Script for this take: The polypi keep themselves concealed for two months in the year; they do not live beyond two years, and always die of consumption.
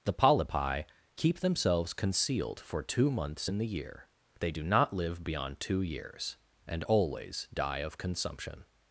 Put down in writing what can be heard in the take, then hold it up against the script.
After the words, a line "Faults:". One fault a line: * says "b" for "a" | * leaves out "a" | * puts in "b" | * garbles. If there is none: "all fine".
The polypi keep themselves concealed for two months in the year; they do not live beyond two years, and always die of consumption.
Faults:
all fine